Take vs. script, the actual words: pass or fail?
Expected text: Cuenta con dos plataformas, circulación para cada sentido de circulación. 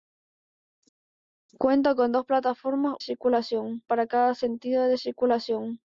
pass